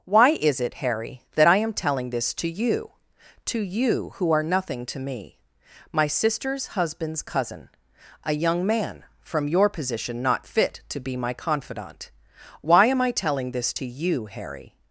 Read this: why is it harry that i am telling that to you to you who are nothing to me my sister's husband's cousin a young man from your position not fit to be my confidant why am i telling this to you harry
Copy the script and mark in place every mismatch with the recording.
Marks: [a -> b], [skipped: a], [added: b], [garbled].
why is it harry that i am telling [that -> this] to you to you who are nothing to me my sister's husband's cousin a young man from your position not fit to be my confidant why am i telling this to you harry